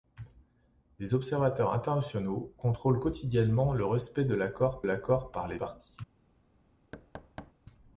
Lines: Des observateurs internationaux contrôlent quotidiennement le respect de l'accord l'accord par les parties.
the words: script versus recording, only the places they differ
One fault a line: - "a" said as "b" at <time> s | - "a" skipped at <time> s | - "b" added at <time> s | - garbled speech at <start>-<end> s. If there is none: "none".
none